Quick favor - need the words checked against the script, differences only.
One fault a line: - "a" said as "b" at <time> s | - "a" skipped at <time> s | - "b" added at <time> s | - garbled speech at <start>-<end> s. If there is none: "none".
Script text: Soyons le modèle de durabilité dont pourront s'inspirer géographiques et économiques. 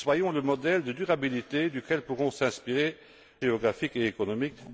none